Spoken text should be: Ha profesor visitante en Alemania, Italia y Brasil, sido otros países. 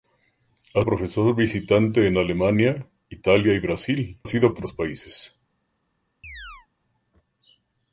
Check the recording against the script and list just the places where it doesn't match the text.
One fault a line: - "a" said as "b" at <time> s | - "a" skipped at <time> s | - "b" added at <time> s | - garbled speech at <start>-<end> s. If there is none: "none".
none